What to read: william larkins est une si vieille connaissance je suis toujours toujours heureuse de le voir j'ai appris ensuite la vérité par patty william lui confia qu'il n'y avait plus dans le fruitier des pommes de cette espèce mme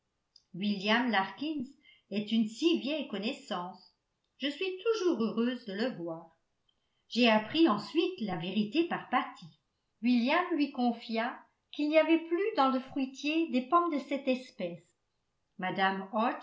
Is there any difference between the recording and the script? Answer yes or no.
yes